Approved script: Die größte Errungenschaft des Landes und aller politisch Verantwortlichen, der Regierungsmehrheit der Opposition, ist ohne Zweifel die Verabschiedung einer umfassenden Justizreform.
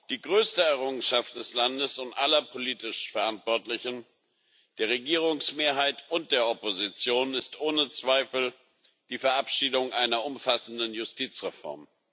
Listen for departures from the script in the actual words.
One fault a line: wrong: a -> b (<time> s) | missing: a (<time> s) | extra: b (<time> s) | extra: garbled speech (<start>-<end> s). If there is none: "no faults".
extra: und (6.1 s)